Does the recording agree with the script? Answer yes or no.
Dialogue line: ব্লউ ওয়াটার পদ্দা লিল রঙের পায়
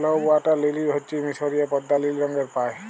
no